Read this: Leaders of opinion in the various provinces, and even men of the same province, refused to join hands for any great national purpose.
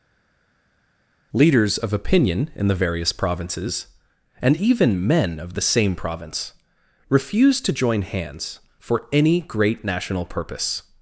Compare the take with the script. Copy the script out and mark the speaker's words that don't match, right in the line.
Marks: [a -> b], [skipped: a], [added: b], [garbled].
Leaders of opinion in the various provinces, and even men of the same province, refused to join hands for any great national purpose.